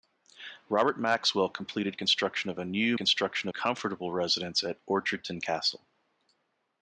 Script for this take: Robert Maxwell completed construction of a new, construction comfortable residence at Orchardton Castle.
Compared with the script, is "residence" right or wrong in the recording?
right